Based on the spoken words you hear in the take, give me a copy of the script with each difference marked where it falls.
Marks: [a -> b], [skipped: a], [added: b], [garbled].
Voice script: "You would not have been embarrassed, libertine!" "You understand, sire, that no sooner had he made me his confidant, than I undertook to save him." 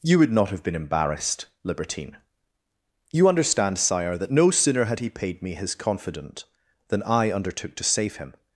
"You would not have been embarrassed, libertine!" "You understand, sire, that no sooner had he [made -> paid] me his confidant, than I undertook to save him."